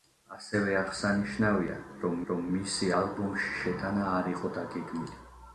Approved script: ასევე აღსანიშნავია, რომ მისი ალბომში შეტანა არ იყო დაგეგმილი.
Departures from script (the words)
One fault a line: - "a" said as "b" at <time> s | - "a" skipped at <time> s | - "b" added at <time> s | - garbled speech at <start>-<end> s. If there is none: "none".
- "რომ" added at 2.3 s